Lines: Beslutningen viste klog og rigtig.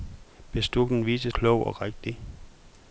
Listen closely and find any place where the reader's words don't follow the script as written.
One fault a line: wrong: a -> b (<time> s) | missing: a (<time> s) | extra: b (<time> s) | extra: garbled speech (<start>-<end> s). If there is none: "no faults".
no faults